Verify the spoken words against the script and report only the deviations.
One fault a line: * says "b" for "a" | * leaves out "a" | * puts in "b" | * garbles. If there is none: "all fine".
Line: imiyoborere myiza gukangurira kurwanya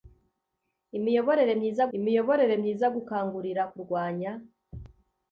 * puts in "imiyoborere myiza"